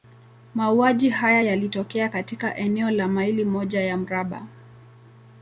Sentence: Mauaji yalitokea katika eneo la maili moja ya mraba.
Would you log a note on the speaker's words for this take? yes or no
yes